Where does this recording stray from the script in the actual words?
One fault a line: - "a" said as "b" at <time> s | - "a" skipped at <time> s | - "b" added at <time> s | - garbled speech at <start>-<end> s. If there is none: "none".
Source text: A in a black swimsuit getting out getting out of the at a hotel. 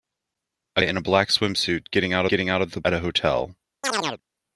none